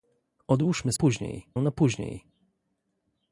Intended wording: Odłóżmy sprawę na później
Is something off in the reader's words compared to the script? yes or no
yes